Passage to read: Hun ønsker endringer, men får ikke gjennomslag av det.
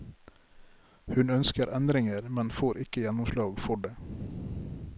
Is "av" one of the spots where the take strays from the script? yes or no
yes